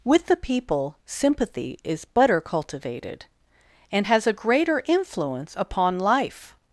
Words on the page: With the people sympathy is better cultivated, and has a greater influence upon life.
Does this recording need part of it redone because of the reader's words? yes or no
no